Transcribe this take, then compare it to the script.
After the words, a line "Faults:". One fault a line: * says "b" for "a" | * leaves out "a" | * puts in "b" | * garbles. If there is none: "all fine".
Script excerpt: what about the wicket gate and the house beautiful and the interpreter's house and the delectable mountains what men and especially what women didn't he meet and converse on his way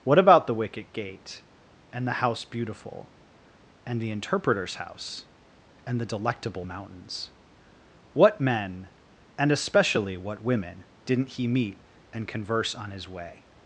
what about the wicket gate and the house beautiful and the interpreter's house and the delectable mountains what men and especially what women didn't he meet and converse on his way
Faults:
all fine